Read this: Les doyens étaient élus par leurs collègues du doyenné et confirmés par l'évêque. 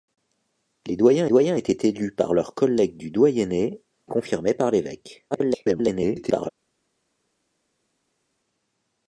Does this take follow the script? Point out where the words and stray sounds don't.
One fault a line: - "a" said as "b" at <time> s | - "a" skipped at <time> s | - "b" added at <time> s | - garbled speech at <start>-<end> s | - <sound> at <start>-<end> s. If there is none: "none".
- "doyens" added at 1.3 s
- "et" skipped at 3.8 s
- garbled speech at 5.3-6.5 s